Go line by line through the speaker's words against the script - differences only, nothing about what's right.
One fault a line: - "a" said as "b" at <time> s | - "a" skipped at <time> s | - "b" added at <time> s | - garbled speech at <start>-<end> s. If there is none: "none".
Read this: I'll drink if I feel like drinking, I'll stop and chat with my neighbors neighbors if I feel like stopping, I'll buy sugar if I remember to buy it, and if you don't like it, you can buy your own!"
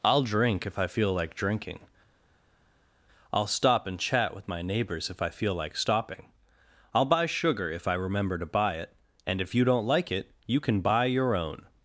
- "neighbors" skipped at 5.1 s